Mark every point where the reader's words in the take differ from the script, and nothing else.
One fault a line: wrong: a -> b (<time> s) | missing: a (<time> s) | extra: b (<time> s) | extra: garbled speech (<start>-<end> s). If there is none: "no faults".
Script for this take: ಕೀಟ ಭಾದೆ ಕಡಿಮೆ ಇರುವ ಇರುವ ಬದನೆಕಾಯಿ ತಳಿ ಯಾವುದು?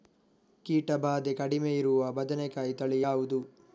missing: ಇರುವ (2.1 s)